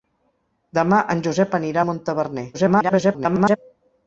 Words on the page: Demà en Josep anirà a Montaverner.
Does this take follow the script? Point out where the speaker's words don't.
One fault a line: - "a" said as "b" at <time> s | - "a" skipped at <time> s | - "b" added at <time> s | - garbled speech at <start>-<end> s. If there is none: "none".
- garbled speech at 2.5-3.6 s